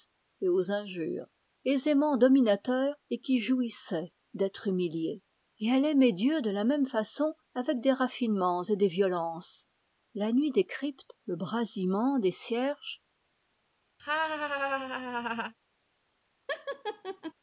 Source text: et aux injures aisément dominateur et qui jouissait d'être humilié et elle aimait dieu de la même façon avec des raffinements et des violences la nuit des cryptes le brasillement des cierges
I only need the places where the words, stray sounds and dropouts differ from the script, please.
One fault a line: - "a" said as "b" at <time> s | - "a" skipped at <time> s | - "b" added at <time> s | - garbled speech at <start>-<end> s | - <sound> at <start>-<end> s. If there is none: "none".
- laugh at 14.0-15.5 s
- laugh at 16.5-17.3 s